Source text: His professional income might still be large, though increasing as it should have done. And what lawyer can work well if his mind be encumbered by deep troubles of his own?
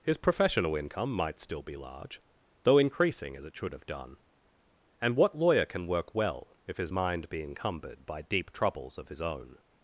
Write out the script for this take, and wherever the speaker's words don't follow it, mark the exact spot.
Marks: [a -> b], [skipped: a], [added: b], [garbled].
His professional income might still be large, though increasing as it should have done. And what lawyer can work well if his mind be encumbered by deep troubles of his own?